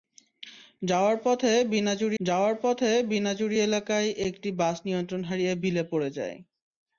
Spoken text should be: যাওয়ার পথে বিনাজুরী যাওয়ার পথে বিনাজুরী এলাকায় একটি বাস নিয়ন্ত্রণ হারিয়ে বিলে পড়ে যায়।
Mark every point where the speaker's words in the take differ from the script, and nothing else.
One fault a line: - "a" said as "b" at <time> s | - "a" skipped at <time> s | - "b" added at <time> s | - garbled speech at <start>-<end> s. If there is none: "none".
none